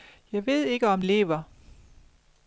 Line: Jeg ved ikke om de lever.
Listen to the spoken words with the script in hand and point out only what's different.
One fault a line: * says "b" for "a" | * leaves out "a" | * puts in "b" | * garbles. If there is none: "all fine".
* leaves out "de"